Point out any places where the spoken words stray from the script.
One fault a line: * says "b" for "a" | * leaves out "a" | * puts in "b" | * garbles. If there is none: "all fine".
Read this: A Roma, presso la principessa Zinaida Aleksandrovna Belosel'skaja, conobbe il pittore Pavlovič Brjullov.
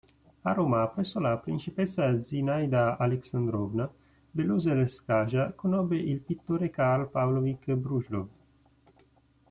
* puts in "Karl"